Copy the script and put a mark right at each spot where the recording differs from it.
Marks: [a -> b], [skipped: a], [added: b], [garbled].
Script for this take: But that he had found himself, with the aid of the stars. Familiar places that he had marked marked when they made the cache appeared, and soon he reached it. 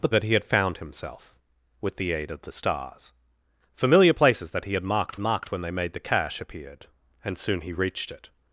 But that he had found himself, with the aid of the stars. Familiar places that he had marked marked when they made the cache appeared, and soon he reached it.